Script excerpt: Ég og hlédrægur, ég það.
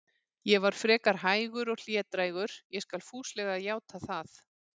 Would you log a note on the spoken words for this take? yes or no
yes